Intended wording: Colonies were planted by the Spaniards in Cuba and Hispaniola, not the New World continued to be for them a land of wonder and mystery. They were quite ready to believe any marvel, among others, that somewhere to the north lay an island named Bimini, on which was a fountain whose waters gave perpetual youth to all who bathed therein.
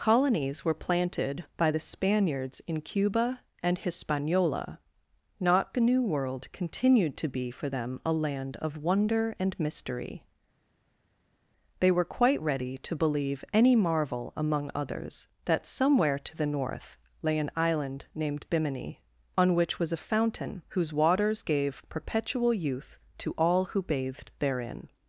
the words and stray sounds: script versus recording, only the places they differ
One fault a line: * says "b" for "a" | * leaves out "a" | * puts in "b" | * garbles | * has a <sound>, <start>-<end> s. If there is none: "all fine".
all fine